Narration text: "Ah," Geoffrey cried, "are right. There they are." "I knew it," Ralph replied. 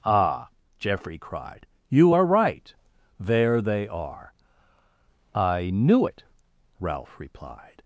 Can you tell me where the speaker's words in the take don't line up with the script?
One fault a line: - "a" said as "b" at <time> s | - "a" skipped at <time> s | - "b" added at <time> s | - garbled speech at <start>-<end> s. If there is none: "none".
- "you" added at 1.9 s